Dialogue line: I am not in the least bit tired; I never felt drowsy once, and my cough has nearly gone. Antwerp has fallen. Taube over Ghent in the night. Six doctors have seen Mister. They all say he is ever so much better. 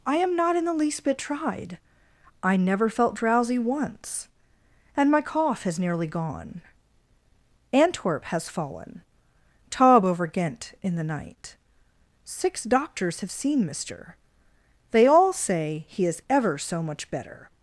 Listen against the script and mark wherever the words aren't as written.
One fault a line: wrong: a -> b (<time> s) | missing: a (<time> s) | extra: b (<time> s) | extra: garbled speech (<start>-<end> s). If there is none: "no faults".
wrong: tired -> tried (1.2 s)